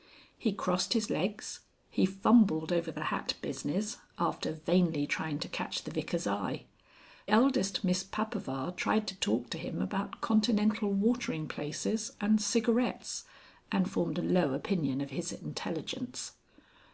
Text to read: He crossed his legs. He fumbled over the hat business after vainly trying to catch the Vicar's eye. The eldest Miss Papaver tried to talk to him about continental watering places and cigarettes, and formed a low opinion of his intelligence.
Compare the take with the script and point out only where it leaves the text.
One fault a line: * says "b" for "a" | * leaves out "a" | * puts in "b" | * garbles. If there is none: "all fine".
* leaves out "The"